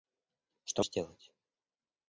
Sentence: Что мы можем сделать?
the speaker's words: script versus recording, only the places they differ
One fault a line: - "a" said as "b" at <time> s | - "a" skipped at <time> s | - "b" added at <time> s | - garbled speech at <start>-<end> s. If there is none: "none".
- "мы можем" skipped at 0.8 s